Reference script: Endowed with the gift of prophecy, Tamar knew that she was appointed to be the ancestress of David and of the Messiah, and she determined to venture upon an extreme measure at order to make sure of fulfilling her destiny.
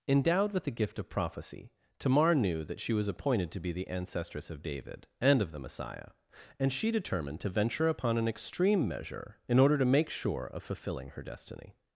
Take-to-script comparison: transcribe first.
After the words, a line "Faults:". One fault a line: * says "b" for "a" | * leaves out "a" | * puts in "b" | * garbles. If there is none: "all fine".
Endowed with the gift of prophecy, Tamar knew that she was appointed to be the ancestress of David and of the Messiah, and she determined to venture upon an extreme measure in order to make sure of fulfilling her destiny.
Faults:
* says "in" for "at"